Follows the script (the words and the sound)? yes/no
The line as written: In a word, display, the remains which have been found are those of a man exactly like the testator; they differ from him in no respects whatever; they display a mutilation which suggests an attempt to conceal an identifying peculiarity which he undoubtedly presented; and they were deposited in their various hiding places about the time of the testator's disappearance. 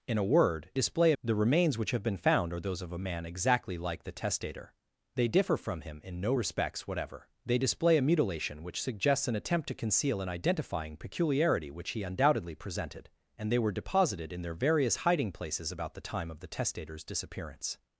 yes